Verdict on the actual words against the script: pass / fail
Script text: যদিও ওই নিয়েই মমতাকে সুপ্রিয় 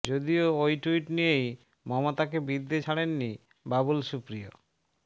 fail